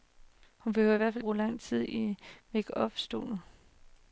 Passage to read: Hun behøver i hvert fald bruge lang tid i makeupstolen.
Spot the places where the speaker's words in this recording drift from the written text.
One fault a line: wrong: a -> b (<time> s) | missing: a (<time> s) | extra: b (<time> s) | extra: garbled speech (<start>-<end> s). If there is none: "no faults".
no faults